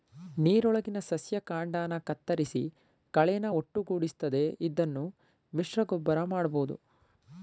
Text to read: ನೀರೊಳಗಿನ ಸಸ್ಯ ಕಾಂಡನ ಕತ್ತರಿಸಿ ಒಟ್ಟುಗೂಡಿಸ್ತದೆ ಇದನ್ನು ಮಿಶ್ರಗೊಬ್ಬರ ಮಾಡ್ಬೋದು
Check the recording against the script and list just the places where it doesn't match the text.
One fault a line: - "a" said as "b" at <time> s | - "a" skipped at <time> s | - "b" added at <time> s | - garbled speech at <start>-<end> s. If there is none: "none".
- "ಕಳೆನ" added at 3.1 s